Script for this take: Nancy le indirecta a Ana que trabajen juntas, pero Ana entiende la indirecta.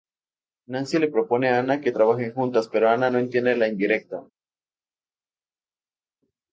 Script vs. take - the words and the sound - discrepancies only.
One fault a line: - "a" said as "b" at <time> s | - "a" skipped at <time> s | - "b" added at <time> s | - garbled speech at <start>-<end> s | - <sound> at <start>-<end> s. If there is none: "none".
- "indirecta" said as "propone" at 1.1 s
- "no" added at 3.1 s